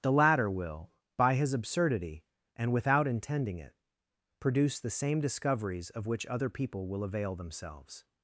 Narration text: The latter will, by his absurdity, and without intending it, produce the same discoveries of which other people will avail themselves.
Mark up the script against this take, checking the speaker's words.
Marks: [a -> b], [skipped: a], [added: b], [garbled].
The latter will, by his absurdity, and without intending it, produce the same discoveries of which other people will avail themselves.